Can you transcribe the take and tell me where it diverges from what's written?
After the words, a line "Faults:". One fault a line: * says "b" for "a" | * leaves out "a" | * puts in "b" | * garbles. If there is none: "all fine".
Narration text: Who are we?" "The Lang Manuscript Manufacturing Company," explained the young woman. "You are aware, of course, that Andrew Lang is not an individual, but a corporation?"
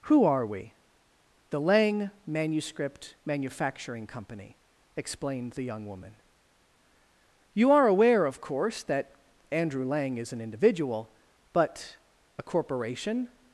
Who are we?" "The Lang Manuscript Manufacturing Company," explained the young woman. "You are aware, of course, that Andrew Lang is an individual, but a corporation?"
Faults:
* leaves out "not"